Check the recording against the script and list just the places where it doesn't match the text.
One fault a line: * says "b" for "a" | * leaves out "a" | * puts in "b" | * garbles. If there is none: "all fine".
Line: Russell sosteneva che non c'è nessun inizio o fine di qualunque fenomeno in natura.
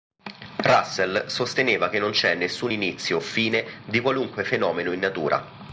all fine